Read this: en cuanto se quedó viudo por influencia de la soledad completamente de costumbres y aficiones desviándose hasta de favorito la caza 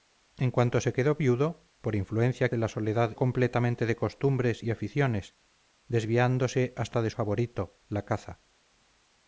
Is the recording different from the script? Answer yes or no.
no